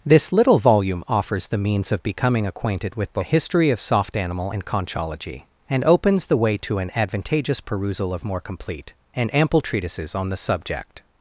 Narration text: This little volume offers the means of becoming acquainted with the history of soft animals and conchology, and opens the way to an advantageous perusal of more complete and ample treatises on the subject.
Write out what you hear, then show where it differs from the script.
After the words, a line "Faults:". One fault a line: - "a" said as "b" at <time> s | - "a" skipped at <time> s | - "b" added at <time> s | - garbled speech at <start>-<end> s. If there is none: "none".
This little volume offers the means of becoming acquainted with the history of soft animal and conchology, and opens the way to an advantageous perusal of more complete and ample treatises on the subject.
Faults:
- "animals" said as "animal" at 4.2 s